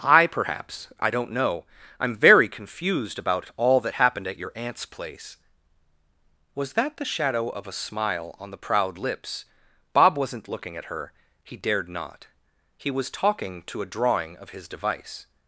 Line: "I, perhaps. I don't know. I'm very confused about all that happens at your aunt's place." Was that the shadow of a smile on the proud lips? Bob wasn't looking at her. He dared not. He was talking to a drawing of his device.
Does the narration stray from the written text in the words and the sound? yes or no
yes